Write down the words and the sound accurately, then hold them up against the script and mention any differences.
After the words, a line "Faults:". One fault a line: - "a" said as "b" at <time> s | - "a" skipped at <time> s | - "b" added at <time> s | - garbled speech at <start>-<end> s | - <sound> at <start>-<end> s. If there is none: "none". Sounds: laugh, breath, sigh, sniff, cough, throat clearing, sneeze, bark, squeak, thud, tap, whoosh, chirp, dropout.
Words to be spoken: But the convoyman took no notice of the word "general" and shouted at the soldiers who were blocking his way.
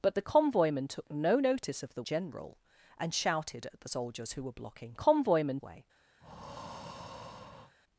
But the convoyman took no notice of the "general" and shouted at the soldiers who were blocking convoyman way.
Faults:
- "word" skipped at 2.0 s
- "his" said as "convoyman" at 4.9 s
- breath at 6.2-7.7 s